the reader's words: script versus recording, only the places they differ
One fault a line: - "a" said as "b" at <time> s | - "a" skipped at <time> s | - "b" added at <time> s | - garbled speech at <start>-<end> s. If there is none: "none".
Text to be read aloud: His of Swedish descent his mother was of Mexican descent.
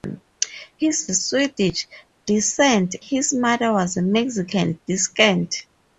none